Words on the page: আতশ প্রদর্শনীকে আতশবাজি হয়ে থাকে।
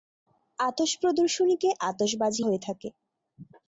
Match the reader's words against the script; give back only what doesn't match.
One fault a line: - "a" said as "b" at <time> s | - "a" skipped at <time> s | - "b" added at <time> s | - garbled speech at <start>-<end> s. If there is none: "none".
none